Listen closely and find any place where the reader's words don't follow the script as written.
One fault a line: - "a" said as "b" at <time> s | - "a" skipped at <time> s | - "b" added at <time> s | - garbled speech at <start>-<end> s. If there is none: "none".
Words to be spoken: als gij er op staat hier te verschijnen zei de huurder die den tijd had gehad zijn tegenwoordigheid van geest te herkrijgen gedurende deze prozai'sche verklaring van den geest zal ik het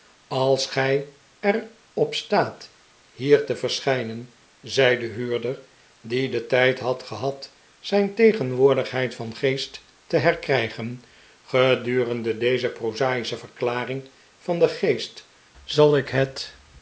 none